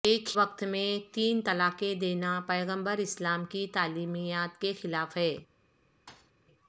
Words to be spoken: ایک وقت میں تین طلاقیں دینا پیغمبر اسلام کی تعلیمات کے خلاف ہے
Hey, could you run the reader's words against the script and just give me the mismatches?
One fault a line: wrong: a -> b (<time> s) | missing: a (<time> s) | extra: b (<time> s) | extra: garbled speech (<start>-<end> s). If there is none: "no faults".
no faults